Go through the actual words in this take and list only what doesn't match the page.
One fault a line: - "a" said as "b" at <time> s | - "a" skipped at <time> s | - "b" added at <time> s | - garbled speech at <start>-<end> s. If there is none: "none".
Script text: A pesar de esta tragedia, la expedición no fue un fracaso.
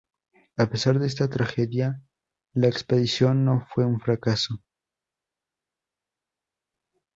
none